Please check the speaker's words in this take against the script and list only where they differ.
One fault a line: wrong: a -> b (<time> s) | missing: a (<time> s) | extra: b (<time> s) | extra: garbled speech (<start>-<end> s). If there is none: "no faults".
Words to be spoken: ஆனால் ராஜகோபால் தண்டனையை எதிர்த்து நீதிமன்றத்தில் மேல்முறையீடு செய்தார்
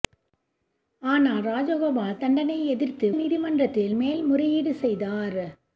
no faults